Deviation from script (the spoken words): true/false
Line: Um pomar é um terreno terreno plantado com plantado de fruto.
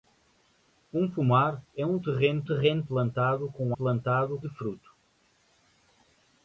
false